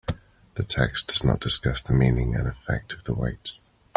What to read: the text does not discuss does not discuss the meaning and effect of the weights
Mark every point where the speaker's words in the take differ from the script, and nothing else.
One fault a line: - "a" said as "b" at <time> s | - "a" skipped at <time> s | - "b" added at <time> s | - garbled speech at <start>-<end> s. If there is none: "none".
- "does not discuss" skipped at 1.8 s